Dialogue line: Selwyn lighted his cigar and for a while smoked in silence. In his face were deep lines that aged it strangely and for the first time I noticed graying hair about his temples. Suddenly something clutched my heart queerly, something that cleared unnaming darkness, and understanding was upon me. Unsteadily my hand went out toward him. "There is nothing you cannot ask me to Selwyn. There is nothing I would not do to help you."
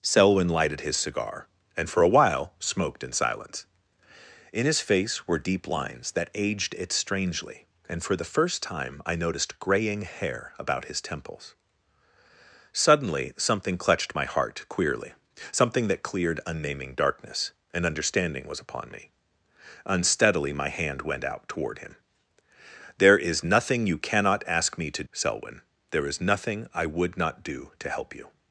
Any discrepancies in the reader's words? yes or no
no